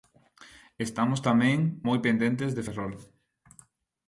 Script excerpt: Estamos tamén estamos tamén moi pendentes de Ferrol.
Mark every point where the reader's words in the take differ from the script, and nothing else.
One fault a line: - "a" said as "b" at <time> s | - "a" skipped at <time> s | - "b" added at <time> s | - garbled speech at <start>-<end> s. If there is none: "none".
- "estamos tamén" skipped at 1.6 s